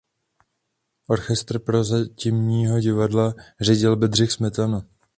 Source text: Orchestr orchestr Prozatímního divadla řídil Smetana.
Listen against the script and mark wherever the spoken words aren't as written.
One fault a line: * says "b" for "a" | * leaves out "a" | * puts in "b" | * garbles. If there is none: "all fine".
* leaves out "orchestr"
* puts in "Bedřich"